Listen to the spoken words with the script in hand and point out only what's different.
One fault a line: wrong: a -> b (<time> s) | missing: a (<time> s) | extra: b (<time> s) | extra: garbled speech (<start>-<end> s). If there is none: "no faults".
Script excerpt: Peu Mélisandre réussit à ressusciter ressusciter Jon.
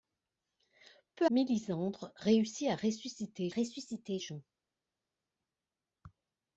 no faults